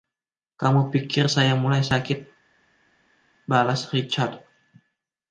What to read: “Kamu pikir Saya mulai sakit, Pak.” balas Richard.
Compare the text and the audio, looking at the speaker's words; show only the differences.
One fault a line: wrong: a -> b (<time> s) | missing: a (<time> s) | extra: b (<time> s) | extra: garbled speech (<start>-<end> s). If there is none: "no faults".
missing: Pak (2.2 s)